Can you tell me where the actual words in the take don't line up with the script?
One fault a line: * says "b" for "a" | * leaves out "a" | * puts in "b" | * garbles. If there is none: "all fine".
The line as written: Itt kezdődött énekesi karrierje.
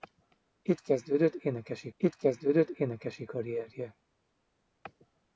* puts in "itt kezdődött énekesi"